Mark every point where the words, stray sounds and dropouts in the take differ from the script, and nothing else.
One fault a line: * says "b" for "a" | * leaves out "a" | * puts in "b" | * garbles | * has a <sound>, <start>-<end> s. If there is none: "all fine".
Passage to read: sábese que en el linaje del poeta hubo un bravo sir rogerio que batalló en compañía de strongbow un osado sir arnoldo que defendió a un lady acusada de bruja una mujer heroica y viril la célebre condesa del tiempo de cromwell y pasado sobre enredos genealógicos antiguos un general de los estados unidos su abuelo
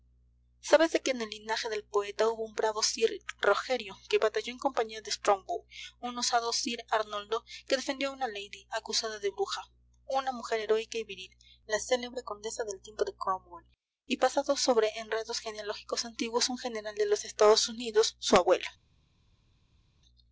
* says "una" for "un"